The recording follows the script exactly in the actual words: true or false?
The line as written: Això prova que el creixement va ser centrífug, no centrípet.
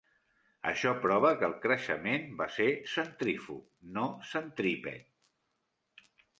true